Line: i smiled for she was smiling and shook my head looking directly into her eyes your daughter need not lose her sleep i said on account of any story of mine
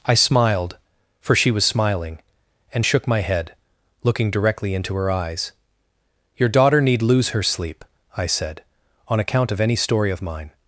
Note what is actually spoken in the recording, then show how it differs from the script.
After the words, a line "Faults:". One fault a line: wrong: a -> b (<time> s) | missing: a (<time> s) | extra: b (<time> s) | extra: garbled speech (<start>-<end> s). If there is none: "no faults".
i smiled for she was smiling and shook my head looking directly into her eyes your daughter need lose her sleep i said on account of any story of mine
Faults:
missing: not (7.0 s)